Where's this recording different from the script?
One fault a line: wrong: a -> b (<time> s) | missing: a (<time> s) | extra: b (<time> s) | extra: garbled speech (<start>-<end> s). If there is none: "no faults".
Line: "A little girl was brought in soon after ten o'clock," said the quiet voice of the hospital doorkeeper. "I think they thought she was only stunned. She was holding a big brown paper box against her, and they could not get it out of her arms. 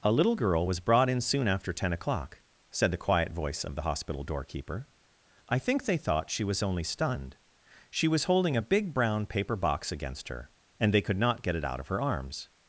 no faults